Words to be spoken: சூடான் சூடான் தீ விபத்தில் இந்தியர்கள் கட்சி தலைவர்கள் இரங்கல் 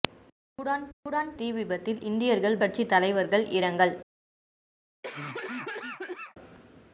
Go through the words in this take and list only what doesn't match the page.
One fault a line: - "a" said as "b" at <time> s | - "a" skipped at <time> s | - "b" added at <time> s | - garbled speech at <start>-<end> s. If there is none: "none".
none